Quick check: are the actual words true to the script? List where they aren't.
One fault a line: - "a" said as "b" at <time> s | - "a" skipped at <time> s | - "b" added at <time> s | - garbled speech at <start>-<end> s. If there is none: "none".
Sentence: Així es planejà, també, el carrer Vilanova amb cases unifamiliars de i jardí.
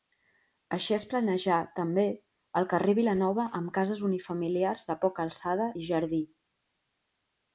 - "poca alçada" added at 5.0 s